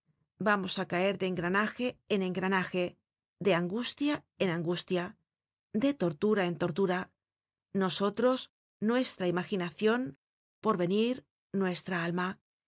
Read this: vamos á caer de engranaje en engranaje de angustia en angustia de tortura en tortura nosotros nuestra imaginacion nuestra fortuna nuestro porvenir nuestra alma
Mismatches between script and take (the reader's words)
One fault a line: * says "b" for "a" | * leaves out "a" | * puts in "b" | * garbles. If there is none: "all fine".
* leaves out "nuestra fortuna nuestro"